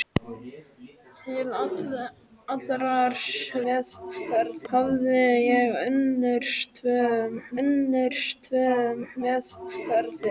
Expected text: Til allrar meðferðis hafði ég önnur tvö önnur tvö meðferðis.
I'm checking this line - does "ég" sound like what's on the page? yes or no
yes